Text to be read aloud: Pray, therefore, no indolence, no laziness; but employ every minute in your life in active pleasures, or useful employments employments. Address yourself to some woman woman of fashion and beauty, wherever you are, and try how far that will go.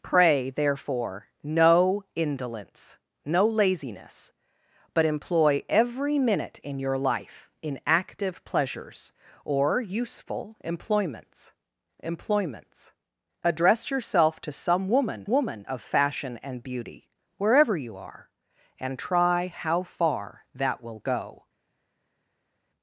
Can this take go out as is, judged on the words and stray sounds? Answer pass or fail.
pass